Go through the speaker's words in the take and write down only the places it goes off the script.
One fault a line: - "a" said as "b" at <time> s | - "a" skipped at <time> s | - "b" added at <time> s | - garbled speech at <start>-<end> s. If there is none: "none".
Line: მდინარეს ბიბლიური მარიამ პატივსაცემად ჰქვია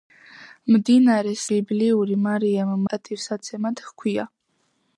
none